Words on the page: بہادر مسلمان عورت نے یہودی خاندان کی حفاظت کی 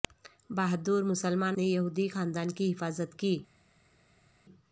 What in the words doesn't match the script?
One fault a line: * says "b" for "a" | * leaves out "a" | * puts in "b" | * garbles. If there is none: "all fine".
* leaves out "عورت"